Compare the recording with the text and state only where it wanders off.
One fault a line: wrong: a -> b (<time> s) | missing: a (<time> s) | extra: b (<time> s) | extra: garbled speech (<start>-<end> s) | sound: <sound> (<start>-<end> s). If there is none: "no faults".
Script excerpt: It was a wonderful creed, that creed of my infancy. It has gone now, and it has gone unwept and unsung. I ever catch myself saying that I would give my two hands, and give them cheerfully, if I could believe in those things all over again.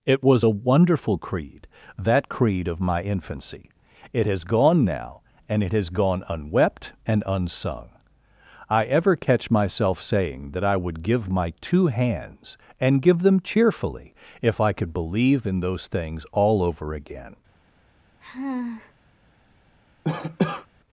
sound: sigh (18.2-18.9 s)
sound: cough (20.0-20.7 s)